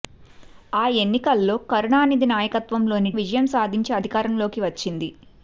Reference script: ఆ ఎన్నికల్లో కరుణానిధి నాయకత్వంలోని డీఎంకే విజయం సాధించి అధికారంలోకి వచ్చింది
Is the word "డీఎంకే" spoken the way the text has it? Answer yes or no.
no